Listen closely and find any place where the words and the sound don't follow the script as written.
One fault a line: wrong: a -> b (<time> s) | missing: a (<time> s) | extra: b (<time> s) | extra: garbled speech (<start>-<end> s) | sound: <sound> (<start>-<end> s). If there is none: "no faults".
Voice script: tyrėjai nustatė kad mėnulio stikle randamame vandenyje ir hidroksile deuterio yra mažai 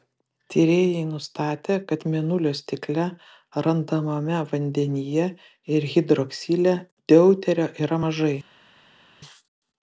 no faults